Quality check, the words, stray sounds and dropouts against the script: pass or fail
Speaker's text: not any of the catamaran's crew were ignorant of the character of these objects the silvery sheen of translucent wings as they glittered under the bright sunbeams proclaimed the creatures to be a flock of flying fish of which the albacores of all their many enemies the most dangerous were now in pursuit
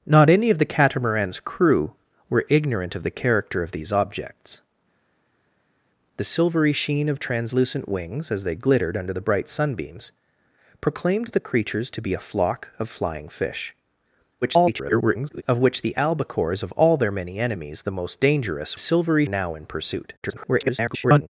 fail